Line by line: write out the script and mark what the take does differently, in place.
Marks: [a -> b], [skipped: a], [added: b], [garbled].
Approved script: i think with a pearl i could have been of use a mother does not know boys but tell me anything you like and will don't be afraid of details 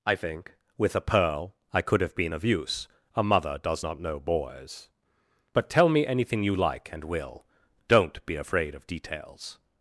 i think with a pearl i could have been of use a mother does not know boys but tell me anything you like and will don't be afraid of details